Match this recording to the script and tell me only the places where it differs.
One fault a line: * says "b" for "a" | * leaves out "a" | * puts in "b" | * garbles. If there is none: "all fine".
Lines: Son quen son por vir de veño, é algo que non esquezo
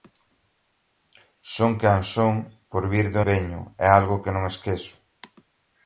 all fine